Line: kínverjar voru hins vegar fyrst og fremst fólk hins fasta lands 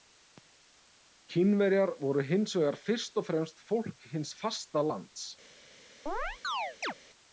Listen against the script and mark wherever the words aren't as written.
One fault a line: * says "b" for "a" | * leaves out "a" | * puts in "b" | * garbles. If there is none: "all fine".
all fine